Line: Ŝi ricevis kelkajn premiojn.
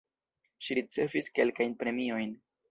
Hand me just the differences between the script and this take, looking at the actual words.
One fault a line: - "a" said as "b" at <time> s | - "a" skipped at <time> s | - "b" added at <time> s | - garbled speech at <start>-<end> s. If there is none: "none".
none